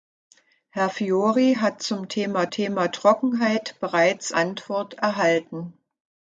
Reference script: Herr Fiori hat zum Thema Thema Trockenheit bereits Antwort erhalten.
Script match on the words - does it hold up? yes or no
yes